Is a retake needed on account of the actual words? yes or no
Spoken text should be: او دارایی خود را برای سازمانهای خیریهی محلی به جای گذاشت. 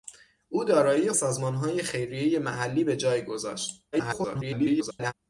yes